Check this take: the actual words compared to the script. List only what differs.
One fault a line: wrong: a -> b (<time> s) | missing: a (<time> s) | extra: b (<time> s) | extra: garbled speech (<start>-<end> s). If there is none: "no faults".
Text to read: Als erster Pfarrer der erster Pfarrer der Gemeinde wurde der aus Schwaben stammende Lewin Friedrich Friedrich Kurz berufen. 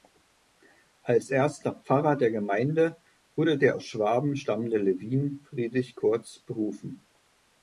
missing: erster Pfarrer der (2.3 s)
missing: Friedrich (6.0 s)